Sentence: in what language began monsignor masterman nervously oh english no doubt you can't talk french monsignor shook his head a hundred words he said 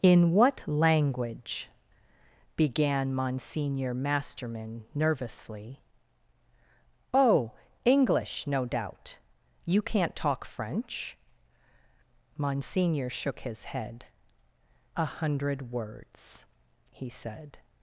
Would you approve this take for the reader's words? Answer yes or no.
yes